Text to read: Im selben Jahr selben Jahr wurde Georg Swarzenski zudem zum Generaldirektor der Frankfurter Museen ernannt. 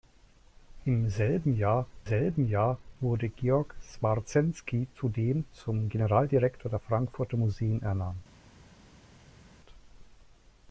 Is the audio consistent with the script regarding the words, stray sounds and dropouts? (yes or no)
yes